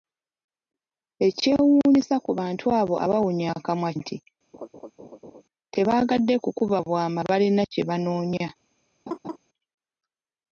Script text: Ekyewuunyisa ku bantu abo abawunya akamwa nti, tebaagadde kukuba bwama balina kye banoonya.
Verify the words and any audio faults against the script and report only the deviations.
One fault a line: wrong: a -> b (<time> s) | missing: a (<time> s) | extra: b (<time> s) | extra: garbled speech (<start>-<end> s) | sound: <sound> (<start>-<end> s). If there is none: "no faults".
sound: laugh (4.5-5.4 s)
sound: laugh (9.1-9.4 s)